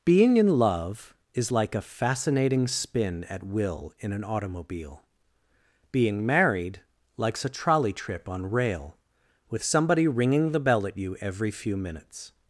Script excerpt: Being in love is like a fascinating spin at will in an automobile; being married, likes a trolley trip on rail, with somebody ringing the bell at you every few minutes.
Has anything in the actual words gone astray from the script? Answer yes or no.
no